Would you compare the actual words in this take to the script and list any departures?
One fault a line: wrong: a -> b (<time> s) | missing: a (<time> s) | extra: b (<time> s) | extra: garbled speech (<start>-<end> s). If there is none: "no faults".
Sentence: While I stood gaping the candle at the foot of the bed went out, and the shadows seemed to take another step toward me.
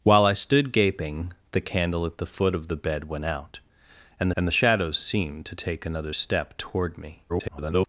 extra: and (4.4 s)
extra: garbled speech (7.3-7.9 s)